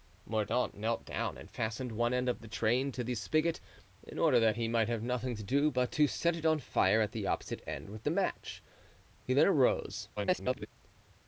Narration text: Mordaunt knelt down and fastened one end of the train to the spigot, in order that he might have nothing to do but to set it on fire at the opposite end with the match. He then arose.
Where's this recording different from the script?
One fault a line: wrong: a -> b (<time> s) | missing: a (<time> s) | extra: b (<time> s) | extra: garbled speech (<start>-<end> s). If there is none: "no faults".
extra: garbled speech (10.2-10.7 s)